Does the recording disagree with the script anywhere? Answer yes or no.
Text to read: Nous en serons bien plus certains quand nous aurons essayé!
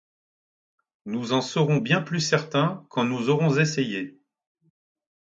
no